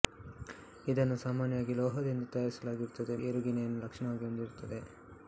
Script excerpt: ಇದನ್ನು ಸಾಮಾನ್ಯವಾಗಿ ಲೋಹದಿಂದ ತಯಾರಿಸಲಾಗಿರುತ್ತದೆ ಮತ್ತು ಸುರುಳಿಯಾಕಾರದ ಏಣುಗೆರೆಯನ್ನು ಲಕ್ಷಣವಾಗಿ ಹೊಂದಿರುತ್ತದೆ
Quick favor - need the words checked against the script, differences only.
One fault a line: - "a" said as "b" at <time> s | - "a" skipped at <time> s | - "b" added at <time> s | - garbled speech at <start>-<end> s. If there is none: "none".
- "ಮತ್ತು ಸುರುಳಿಯಾಕಾರದ" skipped at 3.2 s